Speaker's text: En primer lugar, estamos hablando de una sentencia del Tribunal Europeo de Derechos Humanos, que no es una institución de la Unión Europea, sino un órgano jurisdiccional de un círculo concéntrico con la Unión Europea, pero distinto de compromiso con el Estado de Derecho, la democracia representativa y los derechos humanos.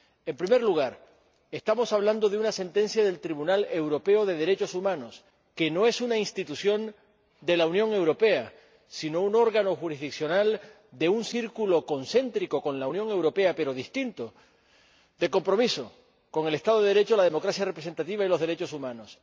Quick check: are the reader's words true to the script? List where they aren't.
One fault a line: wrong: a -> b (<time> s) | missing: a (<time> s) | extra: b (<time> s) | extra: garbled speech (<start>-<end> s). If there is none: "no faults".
no faults